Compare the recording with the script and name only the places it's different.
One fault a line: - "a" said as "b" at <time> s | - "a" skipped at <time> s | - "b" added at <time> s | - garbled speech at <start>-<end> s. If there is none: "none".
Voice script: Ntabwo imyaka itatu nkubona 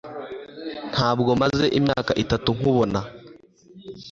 - "maze" added at 1.4 s